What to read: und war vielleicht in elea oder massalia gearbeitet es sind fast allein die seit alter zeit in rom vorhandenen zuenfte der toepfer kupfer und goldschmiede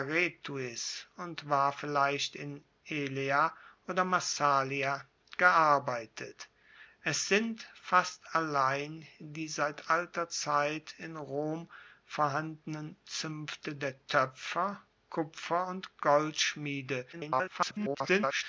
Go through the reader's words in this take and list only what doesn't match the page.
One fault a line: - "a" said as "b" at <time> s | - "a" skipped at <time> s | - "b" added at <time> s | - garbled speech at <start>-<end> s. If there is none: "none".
- garbled speech at 17.1-18.4 s